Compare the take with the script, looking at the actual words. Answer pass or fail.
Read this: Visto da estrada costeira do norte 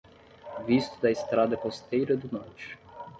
pass